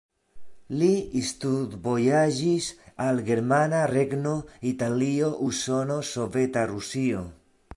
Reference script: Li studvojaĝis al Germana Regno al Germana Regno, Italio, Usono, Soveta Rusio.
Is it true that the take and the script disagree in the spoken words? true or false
true